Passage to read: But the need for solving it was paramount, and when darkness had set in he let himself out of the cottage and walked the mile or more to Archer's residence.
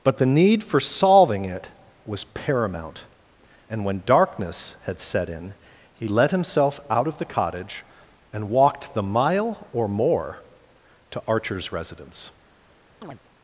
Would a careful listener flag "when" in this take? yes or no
no